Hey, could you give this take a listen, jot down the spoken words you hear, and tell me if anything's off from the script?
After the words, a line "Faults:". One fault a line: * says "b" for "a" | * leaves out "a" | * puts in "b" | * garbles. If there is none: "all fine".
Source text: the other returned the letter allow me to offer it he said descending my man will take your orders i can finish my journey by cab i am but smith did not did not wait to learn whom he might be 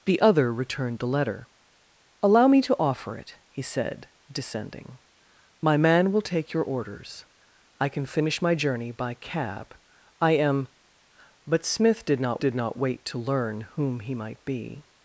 the other returned the letter allow me to offer it he said descending my man will take your orders i can finish my journey by cab i am but smith did not did not wait to learn whom he might be
Faults:
all fine